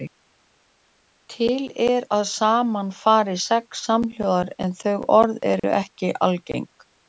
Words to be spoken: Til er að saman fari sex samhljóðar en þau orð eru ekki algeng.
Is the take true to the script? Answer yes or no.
yes